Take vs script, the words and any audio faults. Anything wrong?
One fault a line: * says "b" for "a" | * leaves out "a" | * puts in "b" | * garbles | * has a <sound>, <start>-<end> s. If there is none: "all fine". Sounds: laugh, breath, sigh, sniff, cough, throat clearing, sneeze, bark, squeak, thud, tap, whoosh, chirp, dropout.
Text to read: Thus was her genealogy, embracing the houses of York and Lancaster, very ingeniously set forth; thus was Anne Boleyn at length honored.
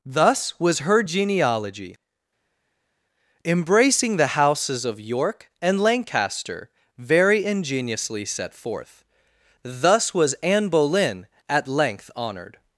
all fine